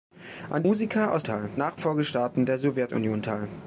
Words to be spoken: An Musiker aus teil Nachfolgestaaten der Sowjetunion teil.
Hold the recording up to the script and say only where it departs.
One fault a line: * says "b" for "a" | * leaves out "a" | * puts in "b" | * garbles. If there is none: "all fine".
all fine